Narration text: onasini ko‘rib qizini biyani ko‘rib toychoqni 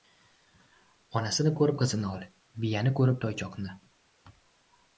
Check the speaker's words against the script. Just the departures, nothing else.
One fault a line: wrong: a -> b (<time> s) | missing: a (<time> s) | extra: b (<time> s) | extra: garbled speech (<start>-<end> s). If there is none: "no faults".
extra: ol (2.1 s)